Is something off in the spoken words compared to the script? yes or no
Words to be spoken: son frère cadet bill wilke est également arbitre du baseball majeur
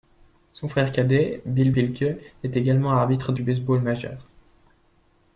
no